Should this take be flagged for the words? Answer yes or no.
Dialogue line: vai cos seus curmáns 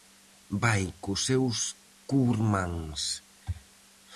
no